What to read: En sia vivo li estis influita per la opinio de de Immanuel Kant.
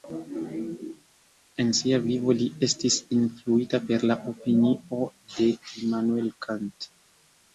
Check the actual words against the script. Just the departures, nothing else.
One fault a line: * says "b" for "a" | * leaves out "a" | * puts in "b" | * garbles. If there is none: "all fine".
* leaves out "de"